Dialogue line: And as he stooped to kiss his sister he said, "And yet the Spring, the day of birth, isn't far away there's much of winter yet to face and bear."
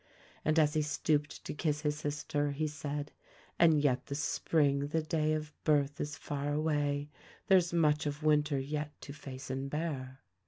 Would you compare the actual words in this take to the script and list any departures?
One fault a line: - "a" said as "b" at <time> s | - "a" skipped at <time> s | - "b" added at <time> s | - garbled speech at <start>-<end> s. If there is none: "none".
- "isn't" said as "is" at 6.0 s